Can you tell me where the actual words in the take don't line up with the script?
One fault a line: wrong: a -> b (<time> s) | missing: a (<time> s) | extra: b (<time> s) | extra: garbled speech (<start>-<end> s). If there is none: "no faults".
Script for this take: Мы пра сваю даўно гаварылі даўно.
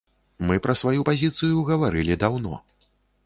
wrong: даўно -> пазіцыю (1.1 s)